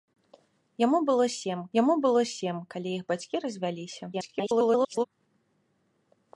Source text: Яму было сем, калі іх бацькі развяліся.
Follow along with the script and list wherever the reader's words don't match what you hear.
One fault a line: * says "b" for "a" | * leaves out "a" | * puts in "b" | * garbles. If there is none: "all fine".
* puts in "яму было сем"
* garbles